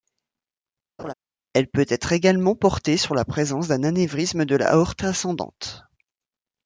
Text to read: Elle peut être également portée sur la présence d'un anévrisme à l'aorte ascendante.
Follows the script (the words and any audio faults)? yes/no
no